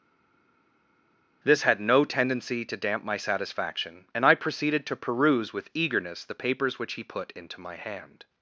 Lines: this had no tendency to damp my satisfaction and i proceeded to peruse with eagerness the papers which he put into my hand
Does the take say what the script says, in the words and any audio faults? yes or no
yes